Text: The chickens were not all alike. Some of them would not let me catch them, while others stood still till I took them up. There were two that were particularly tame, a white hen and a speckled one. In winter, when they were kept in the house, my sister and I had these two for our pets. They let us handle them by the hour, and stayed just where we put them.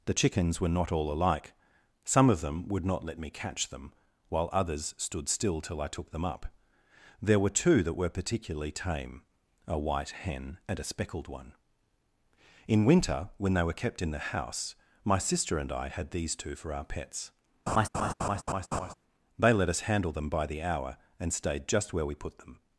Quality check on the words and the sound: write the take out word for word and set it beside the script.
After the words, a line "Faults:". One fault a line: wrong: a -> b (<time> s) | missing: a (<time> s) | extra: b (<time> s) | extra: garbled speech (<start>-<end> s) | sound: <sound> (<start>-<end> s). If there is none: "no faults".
The chickens were not all alike. Some of them would not let me catch them, while others stood still till I took them up. There were two that were particularly tame, a white hen and a speckled one. In winter, when they were kept in the house, my sister and I had these two for our pets. They let us handle them by the hour, and stayed just where we put them.
Faults:
sound: laugh (17.7-18.9 s)